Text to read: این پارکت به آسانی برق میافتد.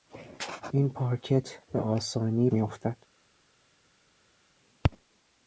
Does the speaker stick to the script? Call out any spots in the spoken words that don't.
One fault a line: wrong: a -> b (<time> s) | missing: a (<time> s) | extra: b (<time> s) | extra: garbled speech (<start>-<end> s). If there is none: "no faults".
missing: برق (2.5 s)